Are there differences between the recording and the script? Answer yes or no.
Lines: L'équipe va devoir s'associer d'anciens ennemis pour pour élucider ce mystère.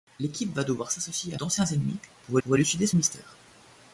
no